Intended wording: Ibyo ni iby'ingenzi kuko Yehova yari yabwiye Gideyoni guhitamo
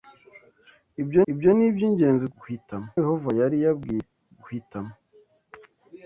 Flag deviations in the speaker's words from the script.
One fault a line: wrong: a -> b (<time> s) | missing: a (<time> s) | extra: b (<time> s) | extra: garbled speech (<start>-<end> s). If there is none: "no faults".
extra: ibyo (1.3 s)
wrong: kuko -> guhitamo (2.4 s)
missing: Gideyoni (4.0 s)